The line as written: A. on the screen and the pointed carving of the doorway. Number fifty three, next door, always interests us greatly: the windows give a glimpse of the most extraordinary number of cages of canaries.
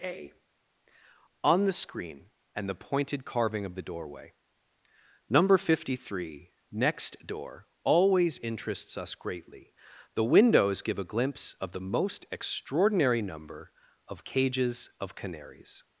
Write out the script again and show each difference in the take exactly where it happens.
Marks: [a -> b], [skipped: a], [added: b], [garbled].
A. on the screen and the pointed carving of the doorway. Number fifty three, next door, always interests us greatly: the windows give a glimpse of the most extraordinary number of cages of canaries.